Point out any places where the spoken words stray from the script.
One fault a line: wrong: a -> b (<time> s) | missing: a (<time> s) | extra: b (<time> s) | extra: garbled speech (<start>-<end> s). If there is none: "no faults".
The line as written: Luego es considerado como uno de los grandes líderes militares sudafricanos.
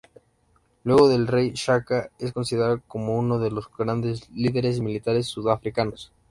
extra: del Rey Shaka (1.1 s)